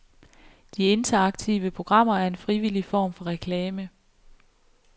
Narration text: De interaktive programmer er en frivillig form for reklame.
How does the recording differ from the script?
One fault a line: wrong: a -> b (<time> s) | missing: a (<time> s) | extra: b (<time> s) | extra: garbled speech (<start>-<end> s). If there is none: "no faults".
no faults